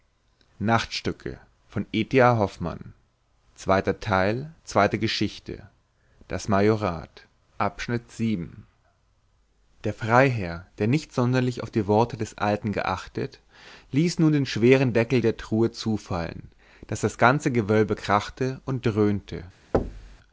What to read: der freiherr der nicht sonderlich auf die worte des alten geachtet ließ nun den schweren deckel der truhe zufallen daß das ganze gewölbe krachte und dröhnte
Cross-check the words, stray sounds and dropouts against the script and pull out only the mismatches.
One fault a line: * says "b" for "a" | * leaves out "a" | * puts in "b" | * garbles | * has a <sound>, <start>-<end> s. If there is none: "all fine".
* has a thud, 19.7-20.2 s